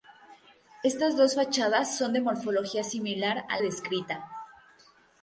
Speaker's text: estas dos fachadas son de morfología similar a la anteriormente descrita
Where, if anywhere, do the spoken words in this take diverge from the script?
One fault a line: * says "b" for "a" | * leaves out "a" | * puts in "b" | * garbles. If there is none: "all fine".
* leaves out "la anteriormente"